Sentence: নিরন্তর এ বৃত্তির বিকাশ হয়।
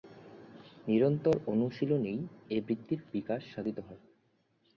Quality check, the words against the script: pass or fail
fail